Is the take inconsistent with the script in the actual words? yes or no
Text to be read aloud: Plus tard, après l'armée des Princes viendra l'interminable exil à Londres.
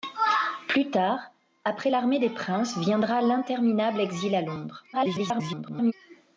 yes